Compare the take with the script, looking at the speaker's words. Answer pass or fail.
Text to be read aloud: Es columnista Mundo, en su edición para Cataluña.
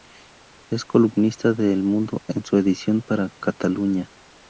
fail